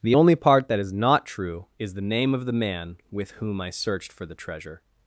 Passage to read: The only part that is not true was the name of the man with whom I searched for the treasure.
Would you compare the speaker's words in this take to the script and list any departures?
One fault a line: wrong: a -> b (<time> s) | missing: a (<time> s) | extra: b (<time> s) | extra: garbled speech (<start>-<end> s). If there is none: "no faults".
wrong: was -> is (1.8 s)